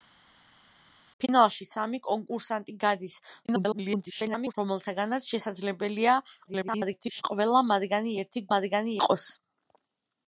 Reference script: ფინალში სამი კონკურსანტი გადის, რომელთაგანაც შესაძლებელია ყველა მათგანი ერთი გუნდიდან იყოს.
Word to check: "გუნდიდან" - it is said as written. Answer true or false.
false